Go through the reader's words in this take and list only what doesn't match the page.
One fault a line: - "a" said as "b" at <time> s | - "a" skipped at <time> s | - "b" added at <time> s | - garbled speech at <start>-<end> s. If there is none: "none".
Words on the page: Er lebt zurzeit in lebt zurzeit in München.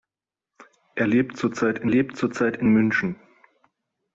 none